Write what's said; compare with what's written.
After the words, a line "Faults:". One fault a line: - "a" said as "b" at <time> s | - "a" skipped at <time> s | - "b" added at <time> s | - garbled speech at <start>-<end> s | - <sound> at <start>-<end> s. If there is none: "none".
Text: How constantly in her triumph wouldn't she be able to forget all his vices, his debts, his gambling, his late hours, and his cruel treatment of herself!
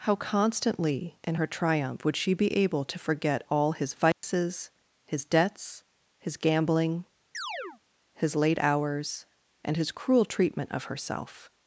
How constantly in her triumph would she be able to forget all his vices, his debts, his gambling, his late hours, and his cruel treatment of herself!
Faults:
- "wouldn't" said as "would" at 2.0 s
- dropout at 4.1-4.2 s
- chirp at 7.3-7.8 s